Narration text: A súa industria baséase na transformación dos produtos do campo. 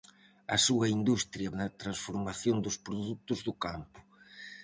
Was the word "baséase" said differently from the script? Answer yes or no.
yes